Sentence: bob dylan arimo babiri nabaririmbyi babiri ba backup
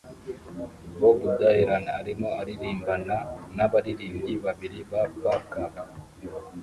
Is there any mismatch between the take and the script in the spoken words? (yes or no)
yes